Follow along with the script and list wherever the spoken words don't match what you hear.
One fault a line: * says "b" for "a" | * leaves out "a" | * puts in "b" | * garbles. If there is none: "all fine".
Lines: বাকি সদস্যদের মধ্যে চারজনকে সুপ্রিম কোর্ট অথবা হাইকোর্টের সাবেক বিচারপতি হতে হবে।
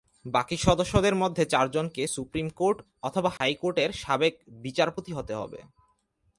all fine